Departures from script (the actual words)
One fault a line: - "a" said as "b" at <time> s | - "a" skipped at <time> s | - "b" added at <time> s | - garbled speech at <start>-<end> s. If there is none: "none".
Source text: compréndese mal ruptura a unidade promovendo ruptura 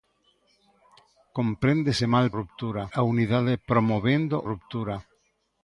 none